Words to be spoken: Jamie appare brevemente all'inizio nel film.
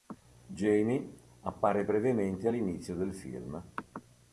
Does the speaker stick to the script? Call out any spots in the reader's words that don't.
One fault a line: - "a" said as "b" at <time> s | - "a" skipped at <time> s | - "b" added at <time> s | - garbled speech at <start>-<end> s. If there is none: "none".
- "nel" said as "del" at 2.9 s